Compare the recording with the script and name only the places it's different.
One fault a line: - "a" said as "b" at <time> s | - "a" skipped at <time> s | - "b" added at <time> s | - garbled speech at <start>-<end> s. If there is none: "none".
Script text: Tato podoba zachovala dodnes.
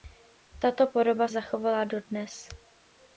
none